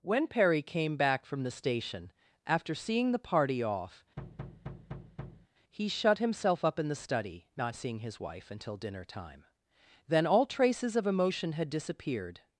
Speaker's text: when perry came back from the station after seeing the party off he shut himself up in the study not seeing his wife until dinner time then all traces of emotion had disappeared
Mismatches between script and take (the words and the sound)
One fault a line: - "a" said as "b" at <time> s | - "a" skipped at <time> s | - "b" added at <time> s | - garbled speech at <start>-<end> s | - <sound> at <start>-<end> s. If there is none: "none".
- thud at 4.2-5.5 s